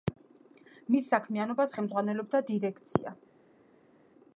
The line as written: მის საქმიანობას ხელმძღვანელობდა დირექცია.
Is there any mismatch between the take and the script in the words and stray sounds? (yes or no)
no